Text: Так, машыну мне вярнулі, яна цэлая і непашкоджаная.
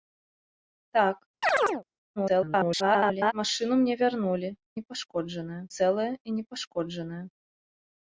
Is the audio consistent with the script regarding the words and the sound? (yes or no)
no